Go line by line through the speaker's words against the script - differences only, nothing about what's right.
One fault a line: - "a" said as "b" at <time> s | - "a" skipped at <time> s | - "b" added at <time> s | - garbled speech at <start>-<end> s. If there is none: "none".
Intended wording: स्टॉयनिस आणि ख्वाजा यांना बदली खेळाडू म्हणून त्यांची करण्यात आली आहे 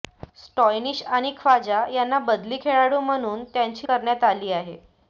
none